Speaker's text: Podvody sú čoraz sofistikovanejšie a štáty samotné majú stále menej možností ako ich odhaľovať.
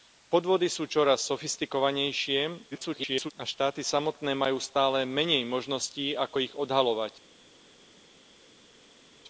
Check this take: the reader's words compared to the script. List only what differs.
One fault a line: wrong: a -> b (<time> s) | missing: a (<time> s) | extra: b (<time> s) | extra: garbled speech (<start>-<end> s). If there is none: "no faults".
extra: garbled speech (2.7-3.3 s)